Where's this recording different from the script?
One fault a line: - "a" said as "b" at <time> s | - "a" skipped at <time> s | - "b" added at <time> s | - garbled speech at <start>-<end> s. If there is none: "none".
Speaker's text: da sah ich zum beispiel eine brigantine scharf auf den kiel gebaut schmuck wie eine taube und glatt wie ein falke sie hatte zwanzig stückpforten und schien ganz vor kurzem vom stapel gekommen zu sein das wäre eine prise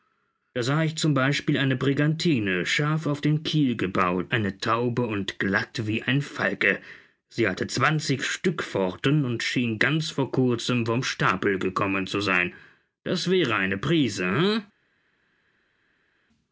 - "schmuck wie" skipped at 4.3 s